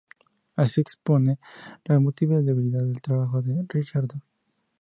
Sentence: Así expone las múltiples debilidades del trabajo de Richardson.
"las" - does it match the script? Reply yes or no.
yes